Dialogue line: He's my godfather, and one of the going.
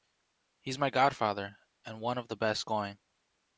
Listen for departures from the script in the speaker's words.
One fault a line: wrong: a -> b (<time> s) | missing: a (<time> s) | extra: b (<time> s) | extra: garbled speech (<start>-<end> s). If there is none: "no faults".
extra: best (2.3 s)